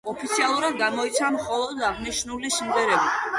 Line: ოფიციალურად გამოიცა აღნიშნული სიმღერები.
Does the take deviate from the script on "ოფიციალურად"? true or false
false